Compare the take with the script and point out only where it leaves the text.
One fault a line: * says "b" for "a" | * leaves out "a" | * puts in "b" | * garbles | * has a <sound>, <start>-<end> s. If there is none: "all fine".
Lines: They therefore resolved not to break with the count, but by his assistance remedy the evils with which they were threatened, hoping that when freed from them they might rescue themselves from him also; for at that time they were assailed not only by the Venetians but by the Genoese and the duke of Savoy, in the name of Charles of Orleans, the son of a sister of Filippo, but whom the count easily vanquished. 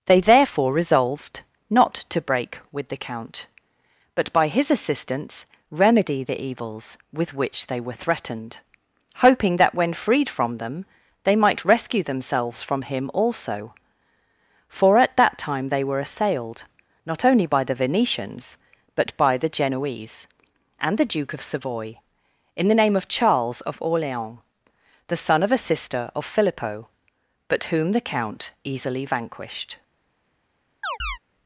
* has a chirp, 30.8-31.2 s